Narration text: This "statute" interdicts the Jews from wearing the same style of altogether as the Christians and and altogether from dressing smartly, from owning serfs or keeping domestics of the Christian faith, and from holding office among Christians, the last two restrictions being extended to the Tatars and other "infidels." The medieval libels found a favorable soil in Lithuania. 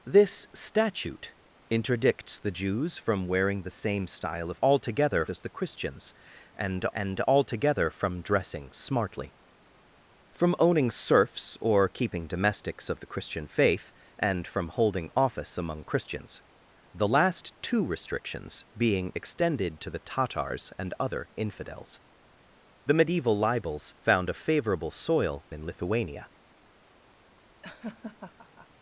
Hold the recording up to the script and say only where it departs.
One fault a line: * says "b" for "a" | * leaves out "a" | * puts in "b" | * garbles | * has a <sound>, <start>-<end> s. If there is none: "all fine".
* has a laugh, 27.6-28.7 s